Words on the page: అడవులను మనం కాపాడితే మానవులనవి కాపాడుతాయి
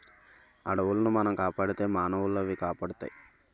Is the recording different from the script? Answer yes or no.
no